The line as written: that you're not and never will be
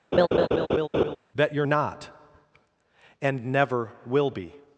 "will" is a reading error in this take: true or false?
false